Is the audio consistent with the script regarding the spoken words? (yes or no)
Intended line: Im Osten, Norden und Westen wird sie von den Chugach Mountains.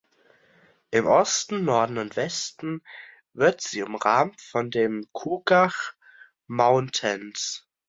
no